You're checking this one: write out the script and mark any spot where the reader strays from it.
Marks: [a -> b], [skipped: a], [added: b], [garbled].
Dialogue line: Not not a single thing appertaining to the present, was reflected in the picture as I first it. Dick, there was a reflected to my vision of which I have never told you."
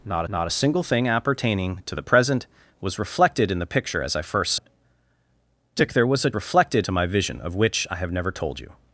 Not not a single thing appertaining to the present, was reflected in the picture as I first it. Dick, there was a reflected to my vision of which I have never told you."